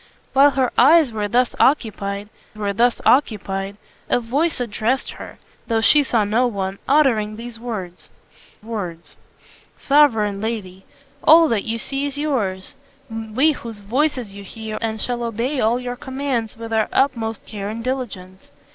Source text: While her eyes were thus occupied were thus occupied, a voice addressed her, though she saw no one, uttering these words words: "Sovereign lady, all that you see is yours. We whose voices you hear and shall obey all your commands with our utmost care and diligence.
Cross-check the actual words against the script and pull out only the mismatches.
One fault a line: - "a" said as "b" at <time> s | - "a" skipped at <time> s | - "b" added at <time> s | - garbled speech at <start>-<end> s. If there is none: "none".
none